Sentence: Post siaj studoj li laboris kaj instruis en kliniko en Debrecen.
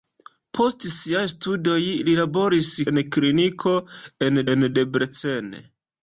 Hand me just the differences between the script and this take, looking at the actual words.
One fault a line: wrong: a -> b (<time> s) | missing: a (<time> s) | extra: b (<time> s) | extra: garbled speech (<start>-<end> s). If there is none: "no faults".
wrong: kaj instruis -> en kliniko (2.9 s)
missing: kliniko (4.4 s)